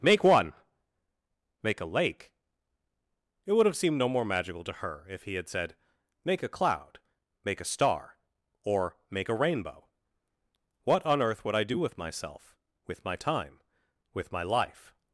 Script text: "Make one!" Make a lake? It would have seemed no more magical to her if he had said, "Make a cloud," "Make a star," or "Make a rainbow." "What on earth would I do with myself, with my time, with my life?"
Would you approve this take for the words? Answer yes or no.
yes